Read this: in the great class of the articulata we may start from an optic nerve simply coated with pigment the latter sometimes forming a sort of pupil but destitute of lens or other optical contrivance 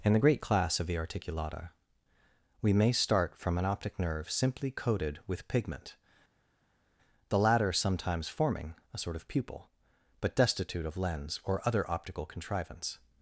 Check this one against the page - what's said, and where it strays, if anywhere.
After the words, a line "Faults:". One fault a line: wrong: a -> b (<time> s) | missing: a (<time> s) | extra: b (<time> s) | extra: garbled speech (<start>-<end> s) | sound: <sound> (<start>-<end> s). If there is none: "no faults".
in the great class of the articulata we may start from an optic nerve simply coated with pigment the latter sometimes forming a sort of pupil but destitute of lens or other optical contrivance
Faults:
no faults